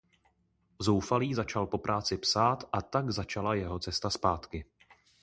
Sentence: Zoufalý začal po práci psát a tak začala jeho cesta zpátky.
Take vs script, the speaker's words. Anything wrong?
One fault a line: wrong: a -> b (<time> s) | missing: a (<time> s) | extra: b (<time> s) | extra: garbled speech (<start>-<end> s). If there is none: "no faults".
no faults